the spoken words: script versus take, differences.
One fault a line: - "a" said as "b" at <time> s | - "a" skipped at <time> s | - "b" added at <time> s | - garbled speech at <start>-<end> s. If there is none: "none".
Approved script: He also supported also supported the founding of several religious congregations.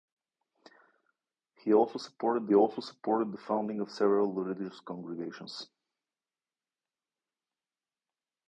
none